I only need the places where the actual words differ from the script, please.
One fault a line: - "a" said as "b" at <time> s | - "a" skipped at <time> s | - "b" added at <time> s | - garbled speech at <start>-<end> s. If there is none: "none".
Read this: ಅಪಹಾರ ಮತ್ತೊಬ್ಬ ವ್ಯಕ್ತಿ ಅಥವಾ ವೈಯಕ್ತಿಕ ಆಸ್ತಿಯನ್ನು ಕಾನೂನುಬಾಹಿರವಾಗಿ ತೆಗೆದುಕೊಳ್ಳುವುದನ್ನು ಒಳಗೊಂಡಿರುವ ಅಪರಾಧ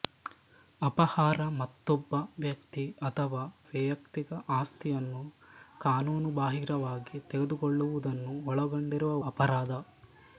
none